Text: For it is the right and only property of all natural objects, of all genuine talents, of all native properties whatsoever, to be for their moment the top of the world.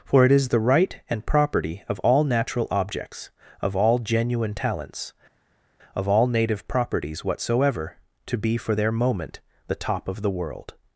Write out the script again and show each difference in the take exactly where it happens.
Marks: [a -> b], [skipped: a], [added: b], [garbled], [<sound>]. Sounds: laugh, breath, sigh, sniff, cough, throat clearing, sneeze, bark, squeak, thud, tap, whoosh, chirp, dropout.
For it is the right and [skipped: only] property of all natural objects, of all genuine talents, of all native properties whatsoever, to be for their moment the top of the world.